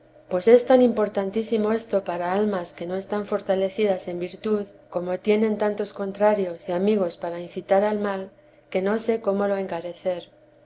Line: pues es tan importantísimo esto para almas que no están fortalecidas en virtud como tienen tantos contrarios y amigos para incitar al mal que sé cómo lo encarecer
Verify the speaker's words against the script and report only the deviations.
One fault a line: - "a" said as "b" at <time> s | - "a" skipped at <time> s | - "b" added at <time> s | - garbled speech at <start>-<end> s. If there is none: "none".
- "no" added at 8.8 s